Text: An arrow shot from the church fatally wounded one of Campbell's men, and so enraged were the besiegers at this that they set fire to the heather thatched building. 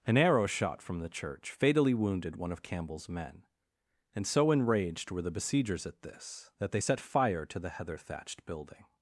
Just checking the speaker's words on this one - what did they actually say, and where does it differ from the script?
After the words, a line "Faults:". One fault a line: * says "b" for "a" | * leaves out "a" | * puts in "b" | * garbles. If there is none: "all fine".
An arrow shot from the church fatally wounded one of Campbell's men, and so enraged were the besiegers at this that they set fire to the heather thatched building.
Faults:
all fine